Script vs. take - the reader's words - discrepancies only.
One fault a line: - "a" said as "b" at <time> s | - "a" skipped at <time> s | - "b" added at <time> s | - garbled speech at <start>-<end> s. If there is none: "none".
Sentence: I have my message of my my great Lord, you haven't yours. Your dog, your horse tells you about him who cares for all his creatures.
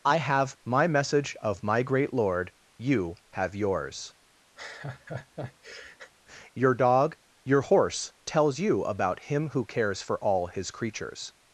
- "my" skipped at 1.8 s
- "haven't" said as "have" at 3.3 s